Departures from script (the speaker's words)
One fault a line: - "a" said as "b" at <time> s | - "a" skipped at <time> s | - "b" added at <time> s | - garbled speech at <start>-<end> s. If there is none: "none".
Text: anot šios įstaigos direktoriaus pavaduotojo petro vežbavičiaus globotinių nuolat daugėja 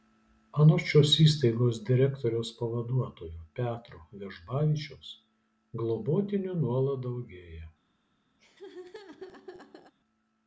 none